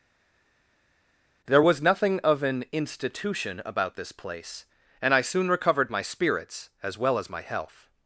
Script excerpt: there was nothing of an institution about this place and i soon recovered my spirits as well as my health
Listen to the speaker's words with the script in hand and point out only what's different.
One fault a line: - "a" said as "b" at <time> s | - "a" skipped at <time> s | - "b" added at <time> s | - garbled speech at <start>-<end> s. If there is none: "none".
none